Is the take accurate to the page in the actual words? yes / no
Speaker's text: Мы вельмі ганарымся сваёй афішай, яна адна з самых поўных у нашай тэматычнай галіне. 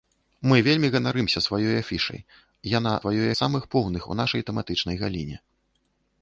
no